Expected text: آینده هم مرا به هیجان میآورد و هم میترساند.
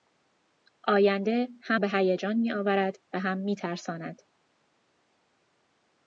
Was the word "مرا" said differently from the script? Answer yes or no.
yes